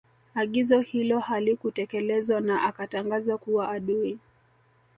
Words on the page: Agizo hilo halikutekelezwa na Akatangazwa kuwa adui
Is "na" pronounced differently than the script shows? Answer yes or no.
no